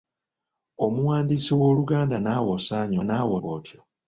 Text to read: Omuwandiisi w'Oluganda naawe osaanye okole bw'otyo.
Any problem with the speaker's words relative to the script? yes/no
yes